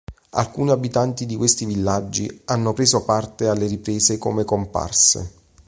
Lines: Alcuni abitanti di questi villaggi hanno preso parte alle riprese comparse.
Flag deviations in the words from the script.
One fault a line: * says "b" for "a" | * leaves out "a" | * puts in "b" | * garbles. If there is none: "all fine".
* puts in "come"